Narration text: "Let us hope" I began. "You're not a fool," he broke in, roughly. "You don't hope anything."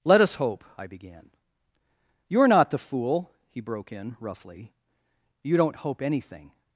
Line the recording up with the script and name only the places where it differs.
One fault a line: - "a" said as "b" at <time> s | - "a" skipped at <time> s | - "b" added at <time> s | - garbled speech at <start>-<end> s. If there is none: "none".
- "a" said as "the" at 2.7 s